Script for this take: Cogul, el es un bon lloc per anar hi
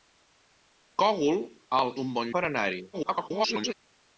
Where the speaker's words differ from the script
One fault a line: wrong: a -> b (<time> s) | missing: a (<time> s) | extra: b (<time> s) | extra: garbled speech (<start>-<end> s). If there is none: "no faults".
missing: es (1.9 s)
missing: lloc (2.3 s)
extra: garbled speech (2.9-3.7 s)